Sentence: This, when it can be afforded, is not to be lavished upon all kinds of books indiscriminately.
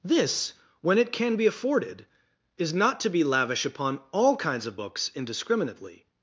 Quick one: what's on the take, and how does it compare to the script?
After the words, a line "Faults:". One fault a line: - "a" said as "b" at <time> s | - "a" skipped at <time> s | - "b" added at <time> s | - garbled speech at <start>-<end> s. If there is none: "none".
This, when it can be afforded, is not to be lavish upon all kinds of books indiscriminately.
Faults:
- "lavished" said as "lavish" at 3.2 s